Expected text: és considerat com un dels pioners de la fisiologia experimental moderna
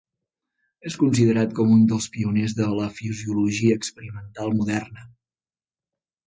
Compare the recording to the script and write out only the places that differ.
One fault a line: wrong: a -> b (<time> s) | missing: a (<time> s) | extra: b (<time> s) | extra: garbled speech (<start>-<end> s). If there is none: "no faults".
no faults